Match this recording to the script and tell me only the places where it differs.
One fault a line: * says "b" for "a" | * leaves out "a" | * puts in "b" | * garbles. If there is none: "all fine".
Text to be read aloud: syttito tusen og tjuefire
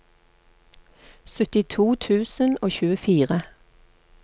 all fine